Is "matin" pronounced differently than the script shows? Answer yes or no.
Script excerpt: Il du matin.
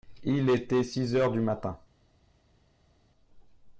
no